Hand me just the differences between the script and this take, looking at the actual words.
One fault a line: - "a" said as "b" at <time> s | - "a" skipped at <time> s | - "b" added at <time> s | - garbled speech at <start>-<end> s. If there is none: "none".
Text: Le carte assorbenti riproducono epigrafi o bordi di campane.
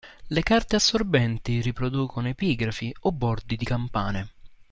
none